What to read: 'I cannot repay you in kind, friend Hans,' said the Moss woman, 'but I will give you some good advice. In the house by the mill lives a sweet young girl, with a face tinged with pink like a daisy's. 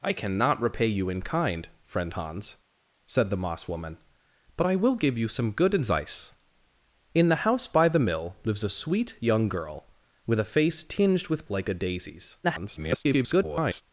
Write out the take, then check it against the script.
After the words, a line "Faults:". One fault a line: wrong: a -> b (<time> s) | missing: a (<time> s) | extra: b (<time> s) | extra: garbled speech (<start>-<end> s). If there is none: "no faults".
'I cannot repay you in kind, friend Hans,' said the Moss woman, 'but I will give you some good advice. In the house by the mill lives a sweet young girl, with a face tinged with like a daisy's. [garbled]
Faults:
missing: pink (11.5 s)
extra: garbled speech (12.4-13.8 s)